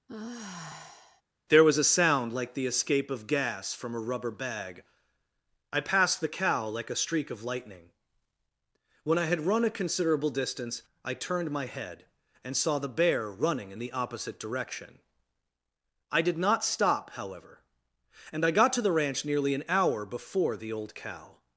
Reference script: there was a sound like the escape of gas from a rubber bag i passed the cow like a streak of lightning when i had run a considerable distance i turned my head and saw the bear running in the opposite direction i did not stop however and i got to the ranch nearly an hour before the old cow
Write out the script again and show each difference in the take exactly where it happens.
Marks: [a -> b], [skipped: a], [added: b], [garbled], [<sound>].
[sigh] there was a sound like the escape of gas from a rubber bag i passed the cow like a streak of lightning when i had run a considerable distance i turned my head and saw the bear running in the opposite direction i did not stop however and i got to the ranch nearly an hour before the old cow